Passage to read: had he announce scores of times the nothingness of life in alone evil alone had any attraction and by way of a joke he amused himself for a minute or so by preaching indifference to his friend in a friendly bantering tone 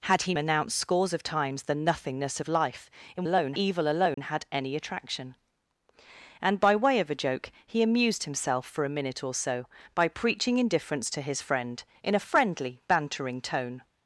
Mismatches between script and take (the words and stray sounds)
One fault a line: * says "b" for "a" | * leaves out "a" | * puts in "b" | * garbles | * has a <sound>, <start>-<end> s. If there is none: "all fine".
* has a dropout, 4.1-4.2 s